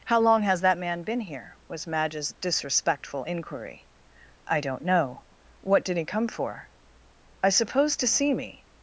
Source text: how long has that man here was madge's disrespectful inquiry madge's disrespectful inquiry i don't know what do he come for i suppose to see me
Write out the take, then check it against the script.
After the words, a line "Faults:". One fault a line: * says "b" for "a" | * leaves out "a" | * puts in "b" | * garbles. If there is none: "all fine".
how long has that man been here was madge's disrespectful inquiry i don't know what did he come for i suppose to see me
Faults:
* puts in "been"
* leaves out "madge's disrespectful inquiry"
* says "did" for "do"